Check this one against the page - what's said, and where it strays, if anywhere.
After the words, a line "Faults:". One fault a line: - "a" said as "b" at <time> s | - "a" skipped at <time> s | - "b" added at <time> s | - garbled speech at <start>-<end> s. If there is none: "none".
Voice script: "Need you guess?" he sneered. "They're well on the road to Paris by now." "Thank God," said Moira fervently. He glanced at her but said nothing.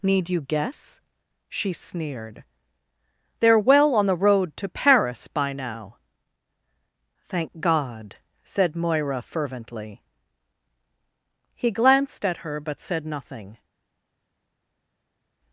"Need you guess?" she sneered. "They're well on the road to Paris by now." "Thank God," said Moira fervently. He glanced at her but said nothing.
Faults:
- "he" said as "she" at 1.5 s